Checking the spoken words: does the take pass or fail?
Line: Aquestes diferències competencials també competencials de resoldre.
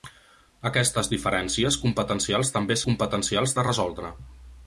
pass